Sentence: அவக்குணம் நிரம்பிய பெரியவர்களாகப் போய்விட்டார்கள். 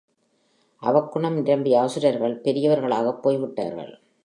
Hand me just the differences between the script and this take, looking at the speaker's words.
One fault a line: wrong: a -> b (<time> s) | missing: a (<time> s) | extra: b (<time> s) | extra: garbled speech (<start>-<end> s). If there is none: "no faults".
extra: அசுரர்கள் (1.8 s)